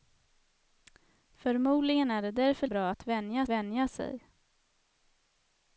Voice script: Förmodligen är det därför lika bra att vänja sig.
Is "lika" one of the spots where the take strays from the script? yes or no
yes